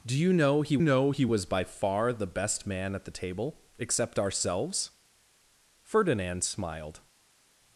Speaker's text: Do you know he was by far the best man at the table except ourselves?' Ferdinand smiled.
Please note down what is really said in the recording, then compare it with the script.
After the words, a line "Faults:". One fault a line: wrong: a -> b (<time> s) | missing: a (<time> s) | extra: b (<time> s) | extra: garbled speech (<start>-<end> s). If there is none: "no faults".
Do you know he know he was by far the best man at the table except ourselves?' Ferdinand smiled.
Faults:
extra: know he (0.8 s)